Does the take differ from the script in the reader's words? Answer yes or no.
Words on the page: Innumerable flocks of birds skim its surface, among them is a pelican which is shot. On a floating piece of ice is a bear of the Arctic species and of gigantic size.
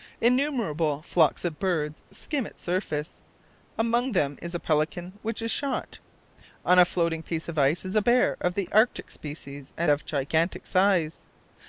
no